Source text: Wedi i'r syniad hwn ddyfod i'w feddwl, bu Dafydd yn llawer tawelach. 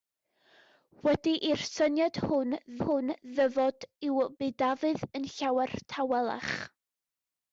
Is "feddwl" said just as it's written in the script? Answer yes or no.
no